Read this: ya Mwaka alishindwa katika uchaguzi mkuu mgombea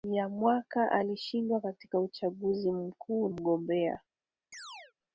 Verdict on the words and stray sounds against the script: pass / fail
fail